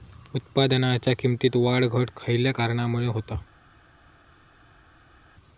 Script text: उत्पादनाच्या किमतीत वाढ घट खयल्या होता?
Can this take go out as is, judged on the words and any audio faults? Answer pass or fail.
fail